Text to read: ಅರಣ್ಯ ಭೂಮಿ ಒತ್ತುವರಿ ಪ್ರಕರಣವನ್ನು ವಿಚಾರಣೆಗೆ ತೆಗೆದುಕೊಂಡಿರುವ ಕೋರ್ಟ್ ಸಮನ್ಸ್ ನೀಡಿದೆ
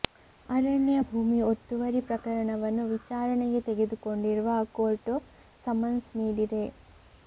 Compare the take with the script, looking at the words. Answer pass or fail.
pass